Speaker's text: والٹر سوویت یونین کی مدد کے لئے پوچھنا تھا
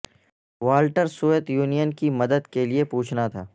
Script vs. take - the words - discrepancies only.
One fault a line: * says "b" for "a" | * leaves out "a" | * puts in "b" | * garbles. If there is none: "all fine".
all fine